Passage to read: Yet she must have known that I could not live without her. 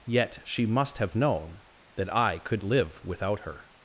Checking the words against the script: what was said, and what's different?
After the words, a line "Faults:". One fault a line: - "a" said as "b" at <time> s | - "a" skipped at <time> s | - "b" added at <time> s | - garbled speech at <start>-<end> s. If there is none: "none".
Yet she must have known that I could live without her.
Faults:
- "not" skipped at 2.6 s